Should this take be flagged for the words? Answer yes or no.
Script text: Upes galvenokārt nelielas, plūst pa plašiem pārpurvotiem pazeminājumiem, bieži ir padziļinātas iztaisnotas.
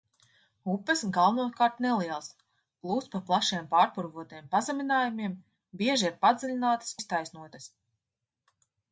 no